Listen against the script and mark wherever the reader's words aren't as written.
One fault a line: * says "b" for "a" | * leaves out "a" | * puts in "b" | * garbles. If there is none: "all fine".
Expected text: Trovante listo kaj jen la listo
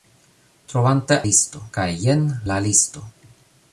all fine